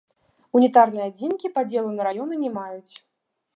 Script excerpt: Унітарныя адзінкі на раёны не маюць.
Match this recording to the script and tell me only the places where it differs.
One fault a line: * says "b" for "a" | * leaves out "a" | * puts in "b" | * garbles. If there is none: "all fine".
* puts in "падзелу"